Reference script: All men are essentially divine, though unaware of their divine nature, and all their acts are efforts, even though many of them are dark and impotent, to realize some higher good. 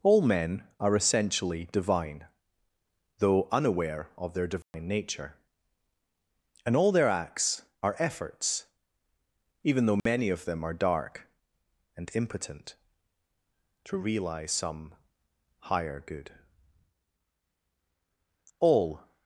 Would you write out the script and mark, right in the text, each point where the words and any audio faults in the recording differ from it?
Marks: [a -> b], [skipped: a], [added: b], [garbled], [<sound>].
All men are essentially divine, though unaware of their divine [dropout] nature, and all their acts are efforts, even though [dropout] many of them are dark and impotent, to realize some higher good. [added: All]